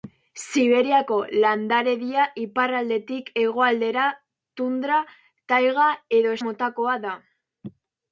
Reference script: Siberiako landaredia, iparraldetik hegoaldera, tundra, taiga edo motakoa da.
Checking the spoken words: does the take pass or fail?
pass